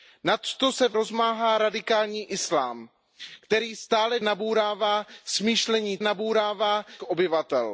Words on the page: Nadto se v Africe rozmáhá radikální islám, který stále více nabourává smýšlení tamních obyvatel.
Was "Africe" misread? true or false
true